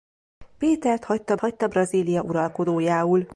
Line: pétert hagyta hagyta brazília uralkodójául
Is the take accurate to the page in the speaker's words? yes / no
yes